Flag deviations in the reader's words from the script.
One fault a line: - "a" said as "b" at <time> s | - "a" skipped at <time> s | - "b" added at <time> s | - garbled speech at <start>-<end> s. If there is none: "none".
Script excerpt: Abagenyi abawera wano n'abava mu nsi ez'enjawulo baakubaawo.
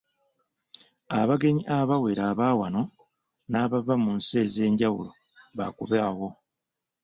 - "aba" added at 2.3 s